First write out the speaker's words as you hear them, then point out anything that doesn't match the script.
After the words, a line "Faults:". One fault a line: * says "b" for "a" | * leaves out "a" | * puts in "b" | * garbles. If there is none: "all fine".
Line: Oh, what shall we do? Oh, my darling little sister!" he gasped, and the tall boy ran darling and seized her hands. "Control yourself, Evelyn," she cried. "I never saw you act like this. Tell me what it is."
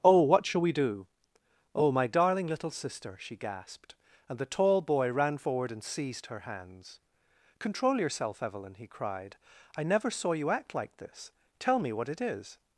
Oh, what shall we do? Oh, my darling little sister!" she gasped, and the tall boy ran forward and seized her hands. "Control yourself, Evelyn," he cried. "I never saw you act like this. Tell me what it is."
Faults:
* says "she" for "he"
* says "forward" for "darling"
* says "he" for "she"